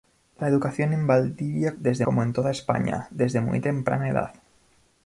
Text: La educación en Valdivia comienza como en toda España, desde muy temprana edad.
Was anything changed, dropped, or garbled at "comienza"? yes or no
yes